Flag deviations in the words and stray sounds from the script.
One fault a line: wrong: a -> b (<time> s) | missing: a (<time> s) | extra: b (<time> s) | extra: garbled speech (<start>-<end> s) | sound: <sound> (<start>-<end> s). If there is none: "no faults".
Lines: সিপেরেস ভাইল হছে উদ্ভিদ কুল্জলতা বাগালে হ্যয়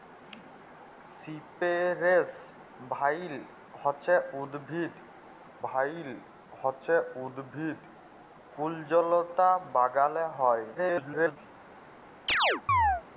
extra: ভাইল হছে উদ্ভিদ (5.6 s)
extra: garbled speech (10.7-11.4 s)
sound: chirp (12.3-13.0 s)